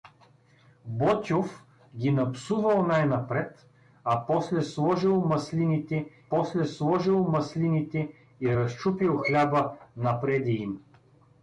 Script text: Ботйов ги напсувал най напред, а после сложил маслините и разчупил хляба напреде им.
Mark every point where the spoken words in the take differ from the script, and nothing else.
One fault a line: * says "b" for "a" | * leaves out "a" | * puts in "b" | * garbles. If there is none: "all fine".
* puts in "после сложил маслините"